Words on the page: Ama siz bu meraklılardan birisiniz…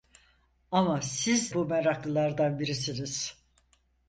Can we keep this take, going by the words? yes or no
yes